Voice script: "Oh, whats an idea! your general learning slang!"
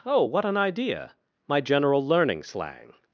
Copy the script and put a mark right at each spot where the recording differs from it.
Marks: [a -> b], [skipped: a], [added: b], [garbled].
"Oh, [whats -> what] an idea! [your -> my] general learning slang!"